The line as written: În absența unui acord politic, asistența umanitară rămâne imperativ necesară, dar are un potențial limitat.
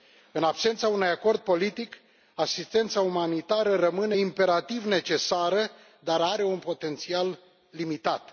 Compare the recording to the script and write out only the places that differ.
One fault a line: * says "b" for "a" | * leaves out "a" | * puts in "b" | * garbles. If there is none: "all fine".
all fine